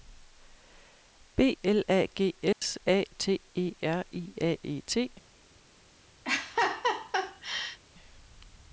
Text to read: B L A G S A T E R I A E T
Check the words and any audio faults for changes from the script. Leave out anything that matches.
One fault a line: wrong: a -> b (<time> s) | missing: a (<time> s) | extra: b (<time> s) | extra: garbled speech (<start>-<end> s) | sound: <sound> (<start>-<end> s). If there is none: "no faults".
sound: dropout (2.5-2.6 s)
sound: laugh (6.2-7.8 s)